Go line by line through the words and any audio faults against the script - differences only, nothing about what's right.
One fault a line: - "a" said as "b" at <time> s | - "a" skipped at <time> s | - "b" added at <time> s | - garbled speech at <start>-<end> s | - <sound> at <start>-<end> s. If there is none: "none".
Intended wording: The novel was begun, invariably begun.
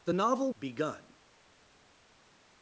- "was begun invariably" skipped at 0.5 s